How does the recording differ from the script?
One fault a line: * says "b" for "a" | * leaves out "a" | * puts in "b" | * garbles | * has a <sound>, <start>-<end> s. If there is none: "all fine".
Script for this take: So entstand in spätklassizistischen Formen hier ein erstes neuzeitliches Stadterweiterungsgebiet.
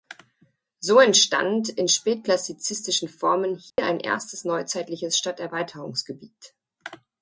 * has a dropout, 3.7-3.8 s